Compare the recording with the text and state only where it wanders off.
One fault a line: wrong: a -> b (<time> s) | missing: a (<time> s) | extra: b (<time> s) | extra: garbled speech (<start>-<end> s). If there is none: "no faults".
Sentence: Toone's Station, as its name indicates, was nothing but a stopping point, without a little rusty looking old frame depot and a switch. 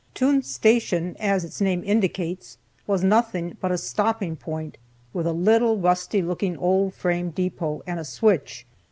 wrong: without -> with (5.1 s)